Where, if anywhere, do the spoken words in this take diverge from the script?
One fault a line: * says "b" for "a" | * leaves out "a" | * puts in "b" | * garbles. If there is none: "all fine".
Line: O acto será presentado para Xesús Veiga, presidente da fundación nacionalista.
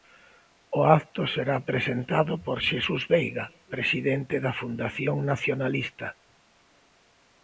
* says "por" for "para"